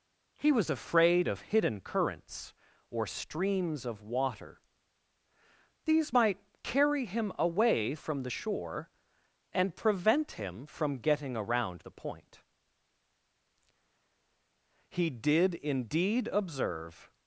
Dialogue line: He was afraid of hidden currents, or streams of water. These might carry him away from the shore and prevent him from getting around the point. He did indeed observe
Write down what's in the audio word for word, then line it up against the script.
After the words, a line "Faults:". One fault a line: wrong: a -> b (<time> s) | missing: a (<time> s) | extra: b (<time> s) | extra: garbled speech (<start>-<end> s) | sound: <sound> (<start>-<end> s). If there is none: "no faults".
He was afraid of hidden currents, or streams of water. These might carry him away from the shore and prevent him from getting around the point. He did indeed observe
Faults:
no faults